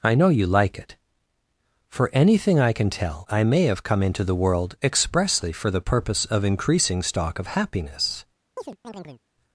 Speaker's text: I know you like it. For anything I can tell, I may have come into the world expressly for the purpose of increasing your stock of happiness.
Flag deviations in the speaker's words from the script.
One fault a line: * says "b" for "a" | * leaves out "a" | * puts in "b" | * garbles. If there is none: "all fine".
* leaves out "your"